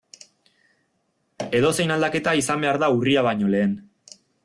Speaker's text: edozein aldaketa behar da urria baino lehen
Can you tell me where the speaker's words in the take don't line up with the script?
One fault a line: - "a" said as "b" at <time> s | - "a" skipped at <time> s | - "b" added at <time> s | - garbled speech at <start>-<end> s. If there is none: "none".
- "izan" added at 2.4 s